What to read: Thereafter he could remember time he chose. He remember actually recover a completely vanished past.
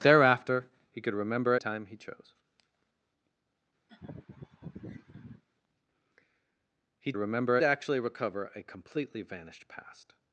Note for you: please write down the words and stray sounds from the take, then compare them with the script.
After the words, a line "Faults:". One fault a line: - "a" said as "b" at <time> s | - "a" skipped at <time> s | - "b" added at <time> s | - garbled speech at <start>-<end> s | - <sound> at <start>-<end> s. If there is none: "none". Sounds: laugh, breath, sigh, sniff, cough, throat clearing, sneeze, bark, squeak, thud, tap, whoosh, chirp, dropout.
Thereafter he could remember time he chose. He remember actually recover a completely vanished past.
Faults:
- laugh at 3.9-5.4 s